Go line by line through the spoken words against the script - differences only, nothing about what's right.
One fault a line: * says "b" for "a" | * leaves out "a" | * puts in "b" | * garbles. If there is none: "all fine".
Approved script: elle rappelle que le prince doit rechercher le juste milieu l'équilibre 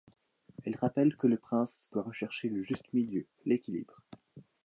all fine